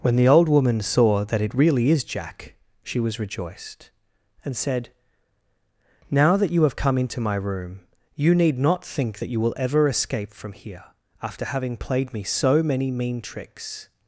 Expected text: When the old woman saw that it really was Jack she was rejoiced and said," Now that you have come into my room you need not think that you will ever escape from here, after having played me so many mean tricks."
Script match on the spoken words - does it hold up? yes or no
no